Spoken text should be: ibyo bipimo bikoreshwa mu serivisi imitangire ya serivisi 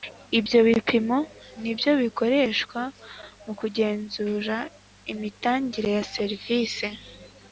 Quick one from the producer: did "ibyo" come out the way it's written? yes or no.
yes